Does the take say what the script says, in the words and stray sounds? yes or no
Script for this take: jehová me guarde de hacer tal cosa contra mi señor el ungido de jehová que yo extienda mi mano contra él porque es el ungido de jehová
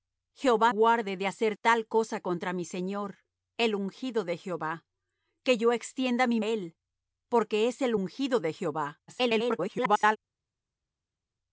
no